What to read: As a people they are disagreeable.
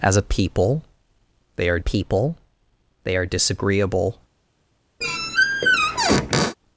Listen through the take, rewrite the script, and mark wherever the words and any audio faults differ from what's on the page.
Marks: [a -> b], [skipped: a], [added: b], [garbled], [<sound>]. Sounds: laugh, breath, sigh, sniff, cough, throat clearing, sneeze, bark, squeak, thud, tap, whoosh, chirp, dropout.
As a people they are [added: people they are] disagreeable. [squeak]